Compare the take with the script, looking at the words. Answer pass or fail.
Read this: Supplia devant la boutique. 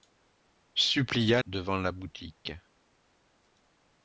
pass